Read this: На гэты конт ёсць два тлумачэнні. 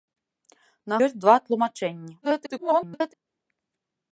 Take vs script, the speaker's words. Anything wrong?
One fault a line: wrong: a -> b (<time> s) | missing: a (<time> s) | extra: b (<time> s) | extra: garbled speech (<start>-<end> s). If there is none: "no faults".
missing: гэты конт (1.0 s)
extra: garbled speech (2.2-3.1 s)